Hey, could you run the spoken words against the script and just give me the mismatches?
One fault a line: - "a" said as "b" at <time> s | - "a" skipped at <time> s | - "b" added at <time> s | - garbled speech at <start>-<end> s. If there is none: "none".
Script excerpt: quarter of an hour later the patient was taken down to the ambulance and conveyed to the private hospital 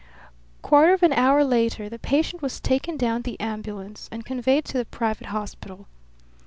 - "to" skipped at 3.2 s